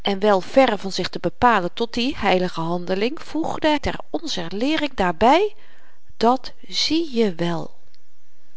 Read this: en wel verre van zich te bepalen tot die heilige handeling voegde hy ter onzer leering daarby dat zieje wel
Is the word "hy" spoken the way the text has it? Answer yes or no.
no